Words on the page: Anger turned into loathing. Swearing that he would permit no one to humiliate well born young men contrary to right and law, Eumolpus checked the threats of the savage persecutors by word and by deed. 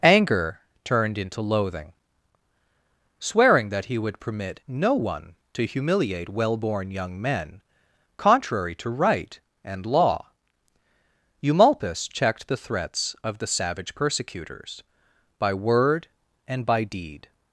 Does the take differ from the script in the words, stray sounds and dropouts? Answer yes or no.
no